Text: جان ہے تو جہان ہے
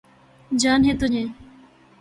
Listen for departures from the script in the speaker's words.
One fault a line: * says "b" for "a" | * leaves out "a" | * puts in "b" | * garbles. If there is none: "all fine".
* leaves out "جہان"